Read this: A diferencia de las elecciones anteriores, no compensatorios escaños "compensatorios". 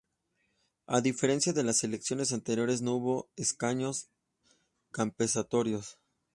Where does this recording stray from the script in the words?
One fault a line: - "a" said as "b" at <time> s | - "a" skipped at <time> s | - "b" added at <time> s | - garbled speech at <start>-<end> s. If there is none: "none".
- "compensatorios" said as "hubo" at 3.0 s